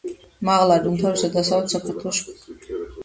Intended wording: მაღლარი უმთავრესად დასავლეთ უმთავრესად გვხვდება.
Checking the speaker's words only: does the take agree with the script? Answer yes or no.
no